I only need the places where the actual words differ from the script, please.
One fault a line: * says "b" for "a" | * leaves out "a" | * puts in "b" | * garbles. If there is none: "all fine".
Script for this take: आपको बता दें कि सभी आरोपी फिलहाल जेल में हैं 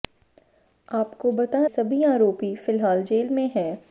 * leaves out "दें कि"